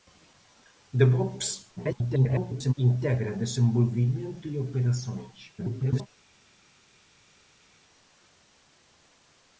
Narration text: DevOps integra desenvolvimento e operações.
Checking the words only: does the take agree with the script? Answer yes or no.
no